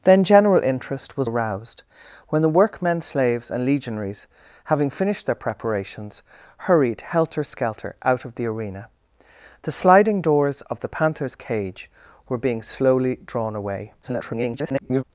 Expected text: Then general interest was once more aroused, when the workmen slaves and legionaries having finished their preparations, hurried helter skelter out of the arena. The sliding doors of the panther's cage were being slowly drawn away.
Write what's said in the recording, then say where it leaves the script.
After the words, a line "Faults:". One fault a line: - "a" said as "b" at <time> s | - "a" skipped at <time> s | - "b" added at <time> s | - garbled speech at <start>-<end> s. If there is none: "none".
Then general interest was aroused, when the workmen slaves and legionaries having finished their preparations, hurried helter skelter out of the arena. The sliding doors of the panther's cage were being slowly drawn away. [garbled]
Faults:
- "once more" skipped at 1.3 s
- garbled speech at 14.0-15.0 s